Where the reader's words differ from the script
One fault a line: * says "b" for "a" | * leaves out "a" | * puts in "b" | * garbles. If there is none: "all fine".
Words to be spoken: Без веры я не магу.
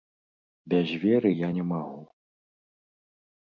all fine